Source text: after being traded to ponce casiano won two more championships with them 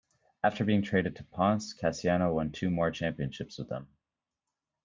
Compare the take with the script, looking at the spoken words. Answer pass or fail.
pass